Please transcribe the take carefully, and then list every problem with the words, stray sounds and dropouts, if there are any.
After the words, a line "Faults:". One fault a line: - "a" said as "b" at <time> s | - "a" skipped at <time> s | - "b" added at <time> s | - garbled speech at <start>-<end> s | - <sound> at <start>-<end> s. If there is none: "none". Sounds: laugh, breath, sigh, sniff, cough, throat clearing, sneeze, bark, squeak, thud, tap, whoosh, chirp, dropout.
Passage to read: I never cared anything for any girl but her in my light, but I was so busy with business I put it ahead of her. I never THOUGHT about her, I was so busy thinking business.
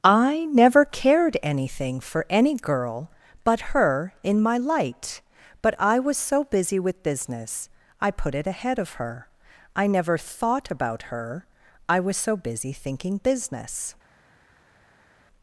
I never cared anything for any girl but her in my light, but I was so busy with business I put it ahead of her. I never THOUGHT about her, I was so busy thinking business.
Faults:
none